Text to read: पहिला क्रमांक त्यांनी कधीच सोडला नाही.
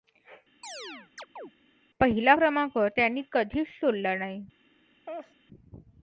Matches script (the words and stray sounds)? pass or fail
fail